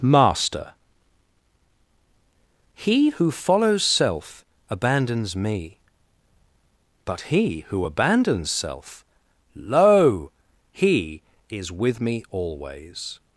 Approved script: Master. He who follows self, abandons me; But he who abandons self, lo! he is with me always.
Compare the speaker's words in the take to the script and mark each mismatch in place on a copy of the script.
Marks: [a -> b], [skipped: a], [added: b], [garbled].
Master. He who follows self, abandons me; But he who abandons self, lo! he is with me always.